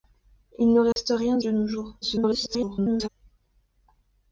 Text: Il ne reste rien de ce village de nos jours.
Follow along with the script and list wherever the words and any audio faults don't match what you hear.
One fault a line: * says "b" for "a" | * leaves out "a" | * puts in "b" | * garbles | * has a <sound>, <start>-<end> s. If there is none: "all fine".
* has a dropout, 0.9-1.0 s
* leaves out "ce village"
* garbles